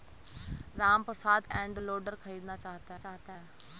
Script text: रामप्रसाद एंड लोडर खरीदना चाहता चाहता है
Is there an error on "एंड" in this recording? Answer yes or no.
no